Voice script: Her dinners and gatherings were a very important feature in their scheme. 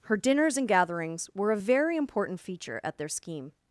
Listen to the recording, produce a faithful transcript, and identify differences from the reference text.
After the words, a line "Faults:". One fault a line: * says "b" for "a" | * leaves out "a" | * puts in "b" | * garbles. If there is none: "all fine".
Her dinners and gatherings were a very important feature at their scheme.
Faults:
* says "at" for "in"